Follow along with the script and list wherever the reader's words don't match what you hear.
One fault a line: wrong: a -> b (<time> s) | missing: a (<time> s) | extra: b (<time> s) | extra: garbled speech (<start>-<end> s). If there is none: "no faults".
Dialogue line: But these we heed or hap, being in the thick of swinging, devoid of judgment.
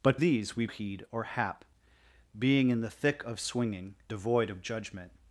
no faults